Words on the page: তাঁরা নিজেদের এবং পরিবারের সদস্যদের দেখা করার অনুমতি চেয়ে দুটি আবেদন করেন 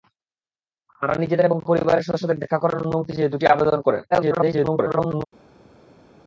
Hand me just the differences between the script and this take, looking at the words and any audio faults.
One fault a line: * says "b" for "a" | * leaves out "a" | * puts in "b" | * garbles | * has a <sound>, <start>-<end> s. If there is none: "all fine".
* garbles